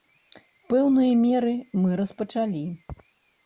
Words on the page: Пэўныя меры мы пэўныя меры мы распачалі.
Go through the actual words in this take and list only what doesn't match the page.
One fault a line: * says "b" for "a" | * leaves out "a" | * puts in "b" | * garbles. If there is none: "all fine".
* leaves out "пэўныя меры мы"